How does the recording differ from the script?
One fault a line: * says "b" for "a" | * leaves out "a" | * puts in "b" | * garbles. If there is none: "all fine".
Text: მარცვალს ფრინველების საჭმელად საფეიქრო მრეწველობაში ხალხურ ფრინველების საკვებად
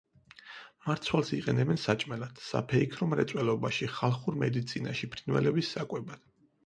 * says "იყენებენ" for "ფრინველების"
* puts in "მედიცინაში"